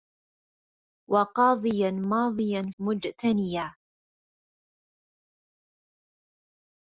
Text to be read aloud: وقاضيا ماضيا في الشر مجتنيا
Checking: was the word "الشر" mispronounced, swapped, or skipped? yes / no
yes